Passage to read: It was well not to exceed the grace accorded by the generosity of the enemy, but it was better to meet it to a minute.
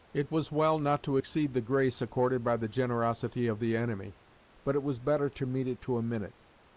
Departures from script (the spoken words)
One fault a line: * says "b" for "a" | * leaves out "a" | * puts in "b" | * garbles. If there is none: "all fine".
all fine